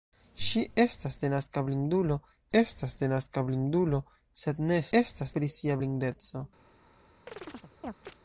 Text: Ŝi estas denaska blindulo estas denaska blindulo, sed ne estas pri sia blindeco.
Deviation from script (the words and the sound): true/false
true